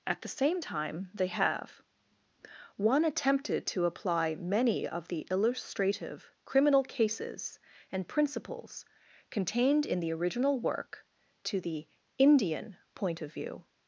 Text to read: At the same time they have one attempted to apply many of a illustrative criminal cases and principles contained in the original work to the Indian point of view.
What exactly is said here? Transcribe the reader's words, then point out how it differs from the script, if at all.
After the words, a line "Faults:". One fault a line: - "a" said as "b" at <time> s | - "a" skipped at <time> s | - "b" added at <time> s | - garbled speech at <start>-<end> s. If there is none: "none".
At the same time they have one attempted to apply many of the illustrative criminal cases and principles contained in the original work to the Indian point of view.
Faults:
- "a" said as "the" at 5.1 s